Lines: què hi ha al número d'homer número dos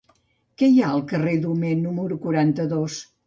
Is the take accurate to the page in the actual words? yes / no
no